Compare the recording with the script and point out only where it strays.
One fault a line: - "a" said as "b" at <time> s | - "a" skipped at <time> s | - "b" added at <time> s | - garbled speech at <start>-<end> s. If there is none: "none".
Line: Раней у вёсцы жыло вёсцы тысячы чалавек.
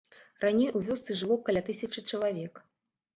- "вёсцы" said as "каля" at 1.5 s